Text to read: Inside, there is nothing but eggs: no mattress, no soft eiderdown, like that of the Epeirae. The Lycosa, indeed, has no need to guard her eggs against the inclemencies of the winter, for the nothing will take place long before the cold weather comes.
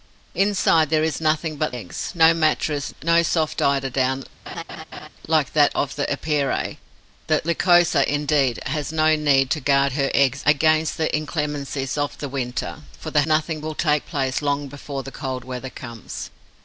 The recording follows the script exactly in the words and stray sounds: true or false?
false